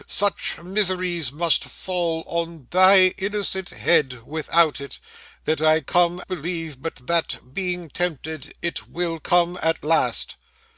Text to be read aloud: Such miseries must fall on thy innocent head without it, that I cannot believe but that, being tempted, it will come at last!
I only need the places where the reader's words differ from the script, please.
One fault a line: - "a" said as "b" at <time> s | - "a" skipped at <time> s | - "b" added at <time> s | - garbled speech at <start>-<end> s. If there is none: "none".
- "cannot" said as "come" at 5.8 s